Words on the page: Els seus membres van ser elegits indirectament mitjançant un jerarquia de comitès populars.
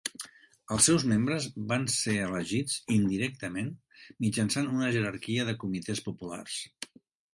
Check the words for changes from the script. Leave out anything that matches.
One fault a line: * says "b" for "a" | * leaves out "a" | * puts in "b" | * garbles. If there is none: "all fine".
* says "una" for "un"